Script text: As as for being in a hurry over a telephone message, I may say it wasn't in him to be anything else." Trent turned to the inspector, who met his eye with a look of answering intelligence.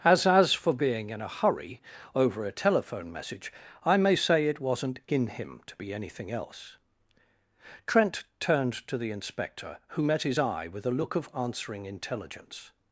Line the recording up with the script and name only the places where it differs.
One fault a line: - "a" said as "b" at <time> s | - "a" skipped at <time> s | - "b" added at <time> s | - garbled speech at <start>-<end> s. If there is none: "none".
none